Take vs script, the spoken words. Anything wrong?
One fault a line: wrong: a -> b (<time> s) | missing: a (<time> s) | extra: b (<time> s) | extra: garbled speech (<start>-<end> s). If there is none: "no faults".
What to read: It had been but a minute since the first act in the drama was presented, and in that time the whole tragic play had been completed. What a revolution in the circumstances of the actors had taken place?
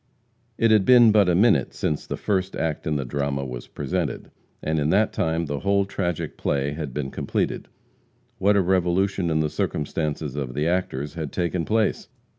no faults